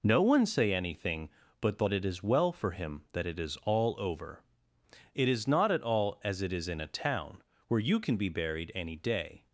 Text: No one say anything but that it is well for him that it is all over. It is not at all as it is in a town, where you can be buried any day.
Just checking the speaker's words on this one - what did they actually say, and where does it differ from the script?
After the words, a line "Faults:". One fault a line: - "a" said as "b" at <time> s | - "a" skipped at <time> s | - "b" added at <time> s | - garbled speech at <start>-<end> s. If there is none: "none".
No one say anything but that it is well for him that it is all over. It is not at all as it is in a town, where you can be buried any day.
Faults:
none